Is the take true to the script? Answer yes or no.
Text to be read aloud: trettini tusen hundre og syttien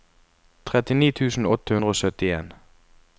no